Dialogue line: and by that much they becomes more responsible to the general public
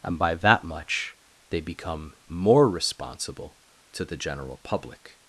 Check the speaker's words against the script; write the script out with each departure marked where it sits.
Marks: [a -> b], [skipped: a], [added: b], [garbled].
and by that much they [becomes -> become] more responsible to the general public